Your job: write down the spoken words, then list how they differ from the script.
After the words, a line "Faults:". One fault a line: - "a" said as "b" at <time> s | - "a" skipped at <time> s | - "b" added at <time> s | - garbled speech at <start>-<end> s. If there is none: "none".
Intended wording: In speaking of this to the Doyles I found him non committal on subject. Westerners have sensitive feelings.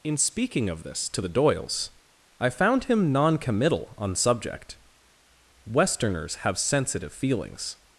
In speaking of this to the Doyles I found him non committal on subject. Westerners have sensitive feelings.
Faults:
none